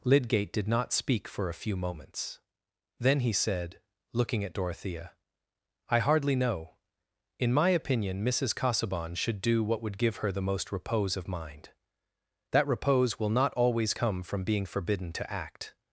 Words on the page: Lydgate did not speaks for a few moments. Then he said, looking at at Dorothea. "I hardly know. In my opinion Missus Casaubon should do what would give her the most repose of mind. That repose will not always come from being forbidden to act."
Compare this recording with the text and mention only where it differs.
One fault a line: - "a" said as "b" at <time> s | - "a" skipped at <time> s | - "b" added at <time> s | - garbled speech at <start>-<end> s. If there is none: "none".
- "speaks" said as "speak" at 0.9 s
- "at" skipped at 4.5 s